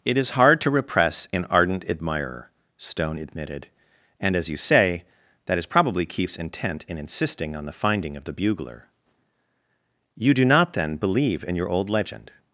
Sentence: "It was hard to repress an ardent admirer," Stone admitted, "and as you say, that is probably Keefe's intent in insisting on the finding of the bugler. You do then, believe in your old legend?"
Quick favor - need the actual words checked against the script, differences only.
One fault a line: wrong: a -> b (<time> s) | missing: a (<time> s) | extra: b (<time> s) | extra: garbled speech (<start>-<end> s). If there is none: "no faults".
wrong: was -> is (0.2 s)
extra: not (10.5 s)